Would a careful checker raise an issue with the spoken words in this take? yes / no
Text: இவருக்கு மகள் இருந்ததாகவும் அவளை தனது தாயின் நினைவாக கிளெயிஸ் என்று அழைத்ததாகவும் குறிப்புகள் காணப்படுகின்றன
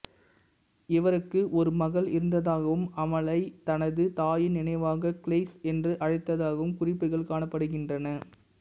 yes